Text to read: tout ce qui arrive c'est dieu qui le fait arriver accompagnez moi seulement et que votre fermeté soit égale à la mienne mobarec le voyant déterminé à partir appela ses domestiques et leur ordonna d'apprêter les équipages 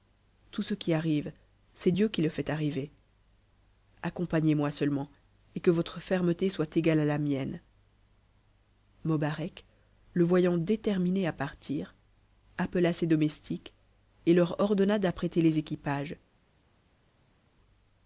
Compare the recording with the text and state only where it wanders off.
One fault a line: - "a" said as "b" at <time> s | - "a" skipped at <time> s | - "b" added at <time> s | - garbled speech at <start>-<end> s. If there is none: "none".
none